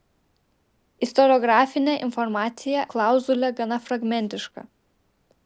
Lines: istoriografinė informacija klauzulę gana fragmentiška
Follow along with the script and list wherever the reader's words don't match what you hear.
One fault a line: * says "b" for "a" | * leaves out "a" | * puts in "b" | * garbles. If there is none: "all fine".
all fine